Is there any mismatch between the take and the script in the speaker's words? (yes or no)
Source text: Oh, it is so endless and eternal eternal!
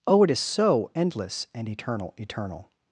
no